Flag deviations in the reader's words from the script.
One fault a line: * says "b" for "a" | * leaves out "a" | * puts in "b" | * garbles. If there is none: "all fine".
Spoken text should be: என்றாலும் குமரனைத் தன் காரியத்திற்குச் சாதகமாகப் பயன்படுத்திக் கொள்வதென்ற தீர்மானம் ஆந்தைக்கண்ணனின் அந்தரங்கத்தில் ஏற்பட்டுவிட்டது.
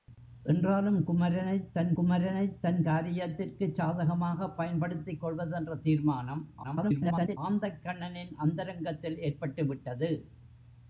* puts in "குமரனைத் தன்"
* garbles